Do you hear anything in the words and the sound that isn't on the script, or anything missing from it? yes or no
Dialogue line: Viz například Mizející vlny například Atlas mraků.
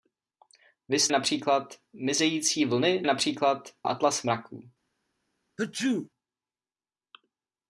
yes